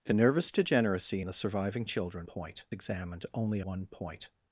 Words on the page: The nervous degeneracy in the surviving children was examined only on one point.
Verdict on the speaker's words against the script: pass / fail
fail